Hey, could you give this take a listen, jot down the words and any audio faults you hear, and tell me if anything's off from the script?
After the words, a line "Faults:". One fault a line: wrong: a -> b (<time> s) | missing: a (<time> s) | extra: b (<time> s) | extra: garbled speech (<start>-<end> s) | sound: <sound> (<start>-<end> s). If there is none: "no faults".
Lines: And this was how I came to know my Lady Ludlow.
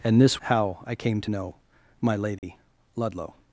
And this how I came to know my Lady Ludlow.
Faults:
missing: was (0.4 s)
sound: dropout (2.4-2.4 s)